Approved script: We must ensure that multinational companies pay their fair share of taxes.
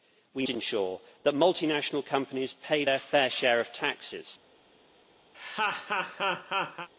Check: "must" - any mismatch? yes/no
yes